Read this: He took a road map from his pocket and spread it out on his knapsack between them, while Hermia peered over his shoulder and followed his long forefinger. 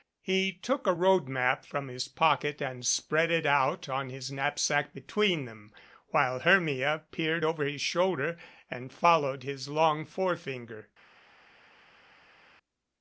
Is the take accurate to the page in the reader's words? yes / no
yes